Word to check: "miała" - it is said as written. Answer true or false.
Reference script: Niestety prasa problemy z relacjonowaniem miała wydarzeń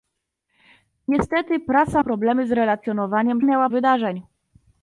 true